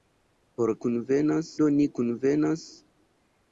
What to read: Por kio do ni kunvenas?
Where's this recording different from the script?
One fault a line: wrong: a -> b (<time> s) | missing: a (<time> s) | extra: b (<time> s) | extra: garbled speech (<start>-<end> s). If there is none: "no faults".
wrong: kio -> kunvenas (0.9 s)